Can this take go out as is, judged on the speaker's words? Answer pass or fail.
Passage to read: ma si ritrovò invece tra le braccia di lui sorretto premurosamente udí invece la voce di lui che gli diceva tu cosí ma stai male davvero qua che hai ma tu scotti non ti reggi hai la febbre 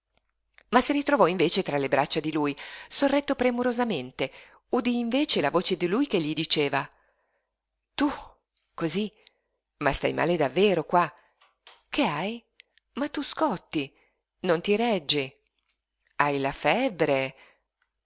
pass